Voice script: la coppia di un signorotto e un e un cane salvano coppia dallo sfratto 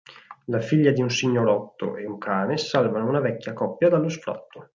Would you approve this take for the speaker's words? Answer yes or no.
no